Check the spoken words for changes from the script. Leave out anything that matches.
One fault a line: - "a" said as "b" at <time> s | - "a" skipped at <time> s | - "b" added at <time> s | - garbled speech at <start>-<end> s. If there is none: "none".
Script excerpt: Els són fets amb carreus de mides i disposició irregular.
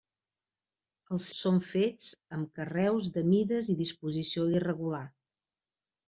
none